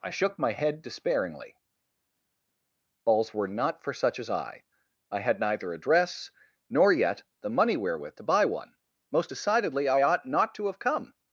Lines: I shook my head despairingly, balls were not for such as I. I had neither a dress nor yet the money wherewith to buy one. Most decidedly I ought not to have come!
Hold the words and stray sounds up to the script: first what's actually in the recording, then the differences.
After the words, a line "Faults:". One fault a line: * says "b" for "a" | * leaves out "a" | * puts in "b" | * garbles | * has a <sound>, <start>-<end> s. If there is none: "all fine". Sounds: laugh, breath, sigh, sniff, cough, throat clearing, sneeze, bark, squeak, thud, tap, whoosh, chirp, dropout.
I shook my head despairingly, balls were not for such as I. I had neither a dress nor yet the money wherewith to buy one. Most decidedly I ought not to have come!
Faults:
all fine